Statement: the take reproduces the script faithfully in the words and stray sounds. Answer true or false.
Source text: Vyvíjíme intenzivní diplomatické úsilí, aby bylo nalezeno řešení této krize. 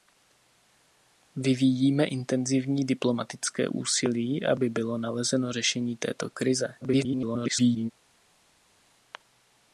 false